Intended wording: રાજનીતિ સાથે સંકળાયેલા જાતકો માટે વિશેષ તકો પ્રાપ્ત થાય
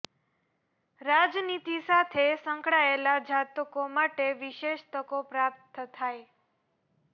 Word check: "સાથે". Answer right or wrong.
right